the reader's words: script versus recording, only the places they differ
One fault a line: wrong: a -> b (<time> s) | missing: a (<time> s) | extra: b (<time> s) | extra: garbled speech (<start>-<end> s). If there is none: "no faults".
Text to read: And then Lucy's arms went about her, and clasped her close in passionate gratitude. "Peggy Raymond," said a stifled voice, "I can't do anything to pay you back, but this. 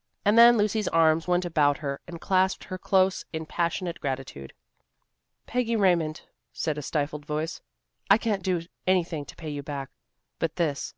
no faults